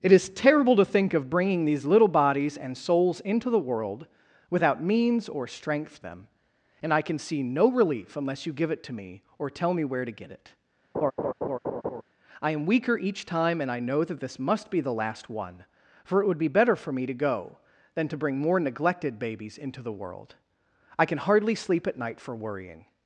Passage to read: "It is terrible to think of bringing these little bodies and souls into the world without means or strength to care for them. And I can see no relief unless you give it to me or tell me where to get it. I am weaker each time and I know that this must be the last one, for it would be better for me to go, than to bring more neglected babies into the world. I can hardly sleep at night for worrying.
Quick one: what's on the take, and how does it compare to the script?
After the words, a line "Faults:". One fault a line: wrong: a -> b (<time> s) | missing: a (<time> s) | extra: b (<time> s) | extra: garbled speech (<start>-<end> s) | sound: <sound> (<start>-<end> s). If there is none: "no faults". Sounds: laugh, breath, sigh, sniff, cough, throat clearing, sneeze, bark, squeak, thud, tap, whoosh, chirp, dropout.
"It is terrible to think of bringing these little bodies and souls into the world without means or strength them. And I can see no relief unless you give it to me or tell me where to get it. I am weaker each time and I know that this must be the last one, for it would be better for me to go, than to bring more neglected babies into the world. I can hardly sleep at night for worrying.
Faults:
missing: to care for (6.0 s)
sound: laugh (10.9-12.0 s)